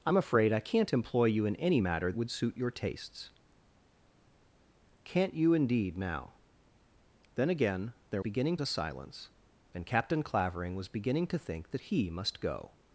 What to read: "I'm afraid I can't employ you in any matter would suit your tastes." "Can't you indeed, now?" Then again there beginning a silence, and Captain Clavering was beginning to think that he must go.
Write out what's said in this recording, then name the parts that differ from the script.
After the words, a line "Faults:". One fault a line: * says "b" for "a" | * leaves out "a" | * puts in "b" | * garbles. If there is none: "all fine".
"I'm afraid I can't employ you in any matter would suit your tastes." "Can't you indeed, now?" Then again there beginning a silence, and Captain Clavering was beginning to think that he must go.
Faults:
all fine